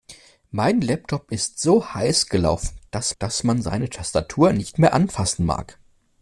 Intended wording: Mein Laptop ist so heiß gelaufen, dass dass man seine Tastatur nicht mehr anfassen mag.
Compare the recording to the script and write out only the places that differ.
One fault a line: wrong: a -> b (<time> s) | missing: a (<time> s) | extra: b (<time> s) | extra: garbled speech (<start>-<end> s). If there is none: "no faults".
no faults